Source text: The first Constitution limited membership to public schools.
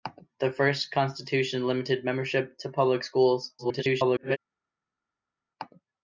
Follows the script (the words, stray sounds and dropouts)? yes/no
no